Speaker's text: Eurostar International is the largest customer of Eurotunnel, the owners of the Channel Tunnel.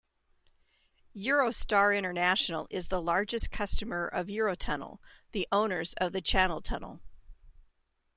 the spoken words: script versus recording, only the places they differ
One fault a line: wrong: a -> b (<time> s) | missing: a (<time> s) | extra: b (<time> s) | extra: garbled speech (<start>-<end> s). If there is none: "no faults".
no faults